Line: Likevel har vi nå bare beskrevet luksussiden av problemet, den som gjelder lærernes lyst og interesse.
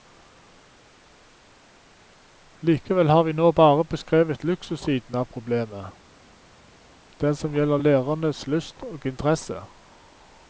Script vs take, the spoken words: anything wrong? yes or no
no